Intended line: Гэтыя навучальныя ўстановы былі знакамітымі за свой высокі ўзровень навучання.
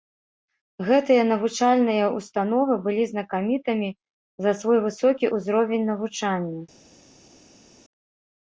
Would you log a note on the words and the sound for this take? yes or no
no